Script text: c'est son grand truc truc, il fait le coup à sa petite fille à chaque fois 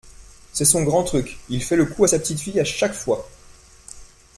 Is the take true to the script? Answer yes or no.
no